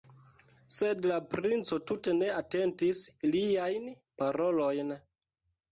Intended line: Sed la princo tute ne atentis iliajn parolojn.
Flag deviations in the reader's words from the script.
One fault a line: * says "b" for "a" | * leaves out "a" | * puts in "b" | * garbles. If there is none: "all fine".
all fine